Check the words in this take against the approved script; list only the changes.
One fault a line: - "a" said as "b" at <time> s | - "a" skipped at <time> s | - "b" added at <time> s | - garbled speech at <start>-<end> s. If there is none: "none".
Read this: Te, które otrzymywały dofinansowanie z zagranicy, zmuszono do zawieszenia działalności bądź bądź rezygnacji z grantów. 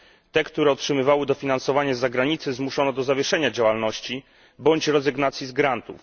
- "bądź" skipped at 4.9 s